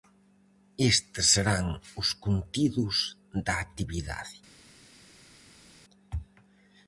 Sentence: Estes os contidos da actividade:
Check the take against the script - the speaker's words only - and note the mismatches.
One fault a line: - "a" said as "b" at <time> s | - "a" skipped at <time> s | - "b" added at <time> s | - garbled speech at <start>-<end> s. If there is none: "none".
- "serán" added at 1.3 s